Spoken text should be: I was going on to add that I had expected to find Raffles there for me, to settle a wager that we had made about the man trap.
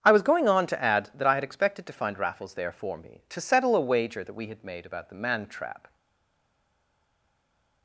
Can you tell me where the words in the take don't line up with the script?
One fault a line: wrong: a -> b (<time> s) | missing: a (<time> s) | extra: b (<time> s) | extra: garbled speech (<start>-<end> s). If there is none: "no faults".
no faults